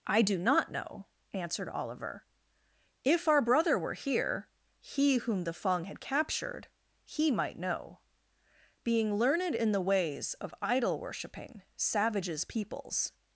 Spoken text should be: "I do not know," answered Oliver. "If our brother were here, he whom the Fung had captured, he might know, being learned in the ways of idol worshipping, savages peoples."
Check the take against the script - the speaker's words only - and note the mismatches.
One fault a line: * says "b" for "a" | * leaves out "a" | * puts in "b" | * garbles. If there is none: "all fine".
all fine